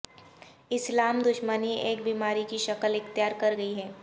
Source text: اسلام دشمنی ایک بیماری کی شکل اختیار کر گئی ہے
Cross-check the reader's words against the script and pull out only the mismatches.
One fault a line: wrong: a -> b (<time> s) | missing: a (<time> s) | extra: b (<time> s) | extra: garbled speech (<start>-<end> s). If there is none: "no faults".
no faults